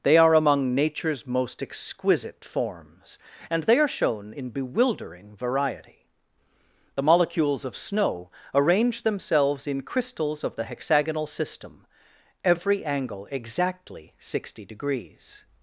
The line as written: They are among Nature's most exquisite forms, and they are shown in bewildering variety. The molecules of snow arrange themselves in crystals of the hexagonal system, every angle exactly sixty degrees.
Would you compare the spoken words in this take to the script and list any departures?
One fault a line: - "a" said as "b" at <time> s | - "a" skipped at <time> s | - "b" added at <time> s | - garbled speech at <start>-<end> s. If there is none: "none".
none